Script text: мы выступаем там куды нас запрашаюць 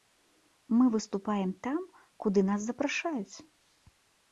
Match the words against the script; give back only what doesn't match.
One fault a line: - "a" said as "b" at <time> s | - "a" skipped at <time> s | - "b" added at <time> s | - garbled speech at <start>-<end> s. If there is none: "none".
none